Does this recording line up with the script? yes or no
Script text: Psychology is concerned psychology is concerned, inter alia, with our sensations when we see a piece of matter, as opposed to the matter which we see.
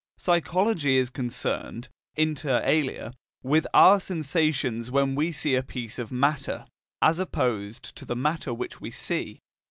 no